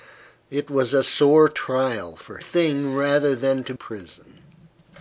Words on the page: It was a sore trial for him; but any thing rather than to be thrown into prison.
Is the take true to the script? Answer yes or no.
no